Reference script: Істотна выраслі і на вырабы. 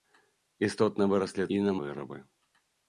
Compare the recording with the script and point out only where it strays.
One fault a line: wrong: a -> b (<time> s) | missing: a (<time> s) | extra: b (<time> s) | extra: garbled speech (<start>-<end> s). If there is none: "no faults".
no faults